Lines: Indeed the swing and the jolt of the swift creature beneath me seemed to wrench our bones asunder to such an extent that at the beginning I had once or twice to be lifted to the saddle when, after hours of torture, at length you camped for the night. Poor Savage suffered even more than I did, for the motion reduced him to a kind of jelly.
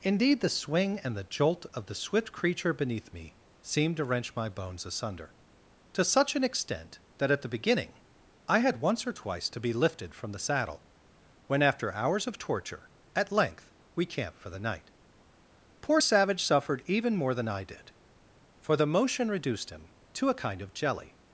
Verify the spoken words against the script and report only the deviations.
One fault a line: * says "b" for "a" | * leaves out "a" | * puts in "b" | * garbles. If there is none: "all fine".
* says "my" for "our"
* says "from" for "to"
* says "we" for "you"